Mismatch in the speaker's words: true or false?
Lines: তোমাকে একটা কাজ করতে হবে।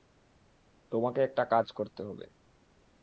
false